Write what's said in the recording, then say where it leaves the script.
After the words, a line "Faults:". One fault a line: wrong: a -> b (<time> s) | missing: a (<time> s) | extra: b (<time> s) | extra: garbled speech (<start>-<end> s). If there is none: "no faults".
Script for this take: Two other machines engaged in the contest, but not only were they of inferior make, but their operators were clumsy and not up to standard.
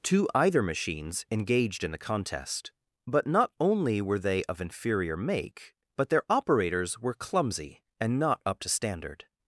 Two either machines engaged in the contest, but not only were they of inferior make, but their operators were clumsy and not up to standard.
Faults:
wrong: other -> either (0.3 s)